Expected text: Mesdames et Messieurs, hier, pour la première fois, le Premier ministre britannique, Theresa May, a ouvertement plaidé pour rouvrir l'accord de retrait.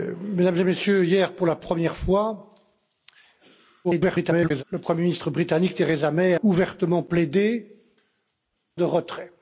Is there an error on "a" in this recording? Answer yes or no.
yes